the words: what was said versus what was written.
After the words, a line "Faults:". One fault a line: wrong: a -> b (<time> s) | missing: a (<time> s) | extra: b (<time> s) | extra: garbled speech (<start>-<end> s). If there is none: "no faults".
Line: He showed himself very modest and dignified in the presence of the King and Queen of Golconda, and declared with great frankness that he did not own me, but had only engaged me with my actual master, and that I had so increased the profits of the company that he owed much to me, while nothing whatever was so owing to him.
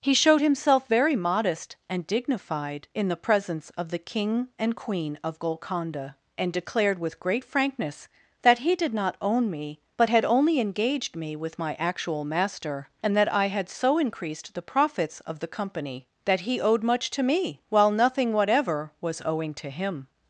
He showed himself very modest and dignified in the presence of the King and Queen of Golconda, and declared with great frankness that he did not own me, but had only engaged me with my actual master, and that I had so increased the profits of the company that he owed much to me, while nothing whatever was owing to him.
Faults:
missing: so (19.2 s)